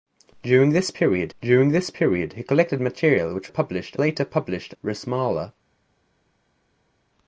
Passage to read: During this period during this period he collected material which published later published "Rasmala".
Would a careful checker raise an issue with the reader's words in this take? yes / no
no